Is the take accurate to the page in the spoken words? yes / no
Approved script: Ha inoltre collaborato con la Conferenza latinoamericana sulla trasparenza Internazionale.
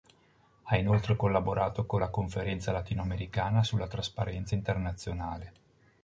yes